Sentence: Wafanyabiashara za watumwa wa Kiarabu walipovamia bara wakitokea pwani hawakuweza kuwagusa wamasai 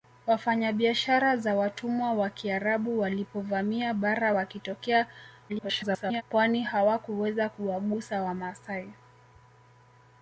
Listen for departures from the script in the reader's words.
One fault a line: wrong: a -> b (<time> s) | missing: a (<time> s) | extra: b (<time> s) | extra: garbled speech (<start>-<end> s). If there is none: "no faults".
extra: garbled speech (5.5-6.2 s)